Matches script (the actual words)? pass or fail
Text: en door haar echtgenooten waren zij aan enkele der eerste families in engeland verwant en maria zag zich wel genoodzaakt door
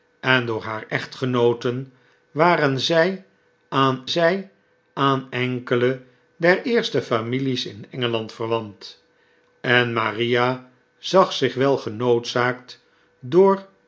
fail